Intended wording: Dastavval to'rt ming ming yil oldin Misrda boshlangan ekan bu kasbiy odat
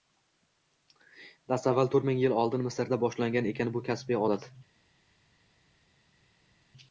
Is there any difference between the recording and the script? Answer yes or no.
yes